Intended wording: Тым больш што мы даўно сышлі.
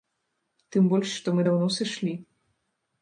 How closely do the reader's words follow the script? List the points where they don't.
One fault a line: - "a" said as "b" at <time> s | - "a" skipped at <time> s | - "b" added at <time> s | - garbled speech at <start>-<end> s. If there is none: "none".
none